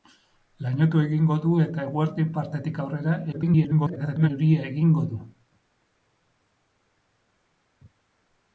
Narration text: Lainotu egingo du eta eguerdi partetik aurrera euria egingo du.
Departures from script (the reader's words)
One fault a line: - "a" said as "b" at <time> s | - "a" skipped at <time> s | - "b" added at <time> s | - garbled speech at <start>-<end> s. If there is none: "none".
- garbled speech at 3.3-4.3 s